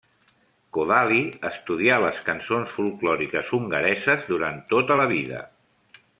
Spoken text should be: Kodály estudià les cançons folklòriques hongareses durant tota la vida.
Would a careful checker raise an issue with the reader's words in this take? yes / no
no